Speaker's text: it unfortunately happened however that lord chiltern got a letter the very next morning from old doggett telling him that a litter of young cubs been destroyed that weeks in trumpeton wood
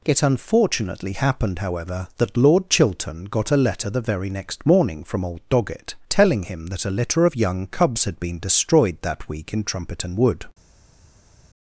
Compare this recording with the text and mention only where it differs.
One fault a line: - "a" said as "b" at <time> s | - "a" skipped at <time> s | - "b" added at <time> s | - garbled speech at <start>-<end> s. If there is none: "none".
- "had" added at 8.1 s
- "weeks" said as "week" at 9.3 s